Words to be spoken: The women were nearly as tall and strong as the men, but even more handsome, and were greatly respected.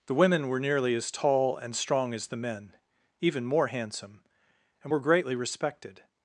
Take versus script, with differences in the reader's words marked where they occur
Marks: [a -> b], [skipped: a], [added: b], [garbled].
The women were nearly as tall and strong as the men, [skipped: but] even more handsome, and were greatly respected.